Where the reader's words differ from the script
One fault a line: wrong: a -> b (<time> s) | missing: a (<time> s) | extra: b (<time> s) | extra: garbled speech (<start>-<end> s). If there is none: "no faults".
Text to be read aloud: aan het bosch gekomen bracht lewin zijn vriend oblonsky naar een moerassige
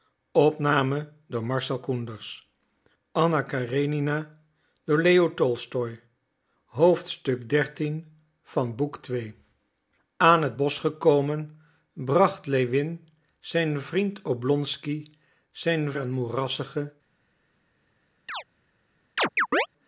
wrong: naar -> zijn (15.5 s)